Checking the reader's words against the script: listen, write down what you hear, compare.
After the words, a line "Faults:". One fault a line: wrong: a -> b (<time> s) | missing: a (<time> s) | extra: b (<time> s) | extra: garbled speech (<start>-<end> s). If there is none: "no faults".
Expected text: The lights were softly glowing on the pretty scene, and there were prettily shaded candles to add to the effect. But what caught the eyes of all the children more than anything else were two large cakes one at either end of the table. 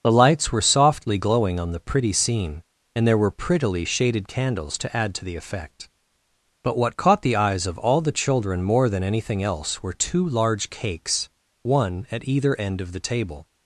The lights were softly glowing on the pretty scene, and there were prettily shaded candles to add to the effect. But what caught the eyes of all the children more than anything else were two large cakes one at either end of the table.
Faults:
no faults